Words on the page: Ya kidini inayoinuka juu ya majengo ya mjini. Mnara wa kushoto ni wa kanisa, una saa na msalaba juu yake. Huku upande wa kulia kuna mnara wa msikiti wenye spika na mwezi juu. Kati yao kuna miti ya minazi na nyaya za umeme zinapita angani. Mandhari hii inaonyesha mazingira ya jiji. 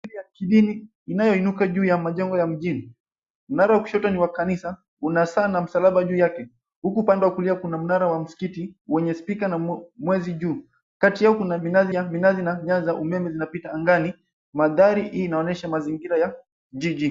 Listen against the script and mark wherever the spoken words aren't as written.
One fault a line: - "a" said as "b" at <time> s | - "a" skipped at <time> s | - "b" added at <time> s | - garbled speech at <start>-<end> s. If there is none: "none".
- "miti" said as "minazi" at 11.5 s